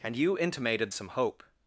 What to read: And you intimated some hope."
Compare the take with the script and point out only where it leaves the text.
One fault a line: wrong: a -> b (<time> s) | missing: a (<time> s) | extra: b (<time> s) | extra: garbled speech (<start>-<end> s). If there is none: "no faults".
no faults